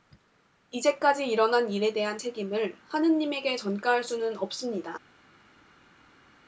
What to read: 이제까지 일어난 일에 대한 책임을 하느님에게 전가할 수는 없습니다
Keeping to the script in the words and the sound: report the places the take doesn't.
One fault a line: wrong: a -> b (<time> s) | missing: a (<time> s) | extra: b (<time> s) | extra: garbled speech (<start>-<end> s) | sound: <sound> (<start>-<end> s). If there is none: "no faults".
no faults